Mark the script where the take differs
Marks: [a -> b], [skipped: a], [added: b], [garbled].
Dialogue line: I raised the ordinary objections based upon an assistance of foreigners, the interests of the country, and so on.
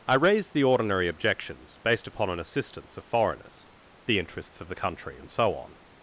I raised the ordinary objections based upon an assistance of foreigners, the interests of the country, and so on.